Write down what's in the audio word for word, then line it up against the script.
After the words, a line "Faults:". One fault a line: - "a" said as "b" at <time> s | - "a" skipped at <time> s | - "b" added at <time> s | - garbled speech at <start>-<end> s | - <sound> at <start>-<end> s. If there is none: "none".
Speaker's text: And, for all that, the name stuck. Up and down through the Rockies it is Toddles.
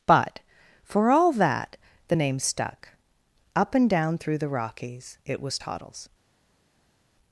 But, for all that, the name stuck. Up and down through the Rockies it was Toddles.
Faults:
- "And" said as "But" at 0.1 s
- "is" said as "was" at 5.4 s